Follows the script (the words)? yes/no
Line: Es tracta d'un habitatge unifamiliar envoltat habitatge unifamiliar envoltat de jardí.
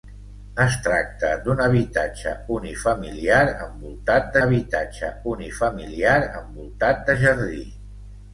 yes